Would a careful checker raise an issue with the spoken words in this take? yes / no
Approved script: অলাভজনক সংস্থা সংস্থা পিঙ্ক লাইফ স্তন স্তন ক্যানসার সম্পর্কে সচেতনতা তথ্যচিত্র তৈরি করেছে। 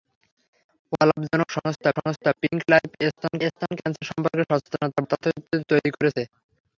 no